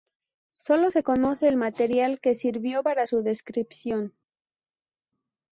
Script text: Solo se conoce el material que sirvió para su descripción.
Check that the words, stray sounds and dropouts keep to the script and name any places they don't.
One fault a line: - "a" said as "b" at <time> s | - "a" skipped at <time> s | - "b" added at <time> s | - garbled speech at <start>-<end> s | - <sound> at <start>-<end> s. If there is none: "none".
none